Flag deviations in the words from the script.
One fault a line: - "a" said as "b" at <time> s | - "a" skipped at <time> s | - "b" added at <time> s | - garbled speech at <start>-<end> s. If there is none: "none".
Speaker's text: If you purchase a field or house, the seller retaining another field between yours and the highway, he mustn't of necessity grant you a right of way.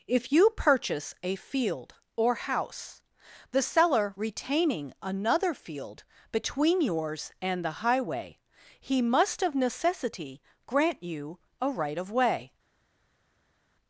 - "mustn't" said as "must" at 9.0 s